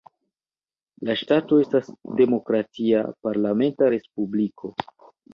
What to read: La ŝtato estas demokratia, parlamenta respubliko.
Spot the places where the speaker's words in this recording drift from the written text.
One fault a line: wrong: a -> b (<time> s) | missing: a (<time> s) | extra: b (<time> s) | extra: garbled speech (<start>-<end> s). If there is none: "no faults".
no faults